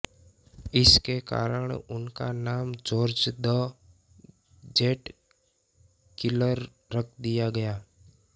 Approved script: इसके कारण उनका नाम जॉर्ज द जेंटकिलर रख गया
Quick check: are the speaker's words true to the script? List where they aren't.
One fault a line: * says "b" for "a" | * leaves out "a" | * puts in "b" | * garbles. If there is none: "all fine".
* puts in "दिया"